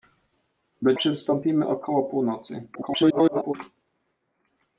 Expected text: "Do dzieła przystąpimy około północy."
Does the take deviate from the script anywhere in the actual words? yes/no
yes